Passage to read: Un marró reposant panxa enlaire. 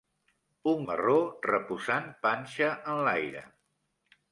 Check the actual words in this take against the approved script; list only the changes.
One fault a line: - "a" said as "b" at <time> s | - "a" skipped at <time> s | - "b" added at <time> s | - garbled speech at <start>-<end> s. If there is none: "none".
none